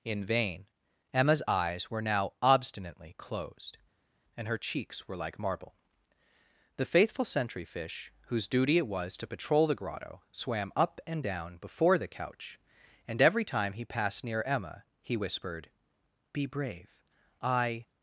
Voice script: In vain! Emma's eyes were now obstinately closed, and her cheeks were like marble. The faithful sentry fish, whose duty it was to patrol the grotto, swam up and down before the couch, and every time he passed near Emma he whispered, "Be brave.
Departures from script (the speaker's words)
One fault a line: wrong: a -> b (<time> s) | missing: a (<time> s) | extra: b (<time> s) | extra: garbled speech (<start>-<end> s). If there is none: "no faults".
extra: I (17.4 s)